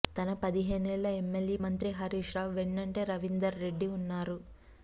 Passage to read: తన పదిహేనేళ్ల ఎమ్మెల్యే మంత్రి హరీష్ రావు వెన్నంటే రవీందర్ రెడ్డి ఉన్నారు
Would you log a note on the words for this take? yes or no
no